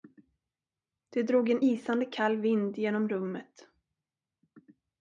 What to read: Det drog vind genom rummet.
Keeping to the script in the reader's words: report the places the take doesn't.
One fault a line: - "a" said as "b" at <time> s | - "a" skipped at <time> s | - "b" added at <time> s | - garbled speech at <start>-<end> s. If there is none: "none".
- "en isande kall" added at 1.5 s